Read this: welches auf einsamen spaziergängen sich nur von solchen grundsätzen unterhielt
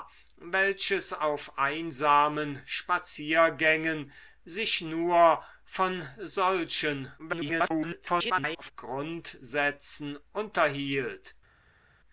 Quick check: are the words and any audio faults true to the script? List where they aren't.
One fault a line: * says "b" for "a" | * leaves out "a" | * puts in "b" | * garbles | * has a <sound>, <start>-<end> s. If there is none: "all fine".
* garbles